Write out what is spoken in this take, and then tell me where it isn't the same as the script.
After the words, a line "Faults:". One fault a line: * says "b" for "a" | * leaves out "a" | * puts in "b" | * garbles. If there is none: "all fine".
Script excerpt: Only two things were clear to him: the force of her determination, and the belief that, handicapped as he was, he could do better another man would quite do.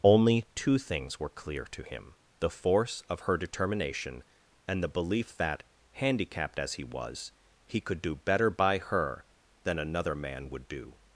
Only two things were clear to him: the force of her determination, and the belief that, handicapped as he was, he could do better by her than another man would do.
Faults:
* puts in "by her than"
* leaves out "quite"